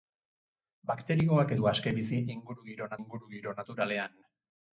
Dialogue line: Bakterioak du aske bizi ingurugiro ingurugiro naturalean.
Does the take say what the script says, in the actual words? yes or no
yes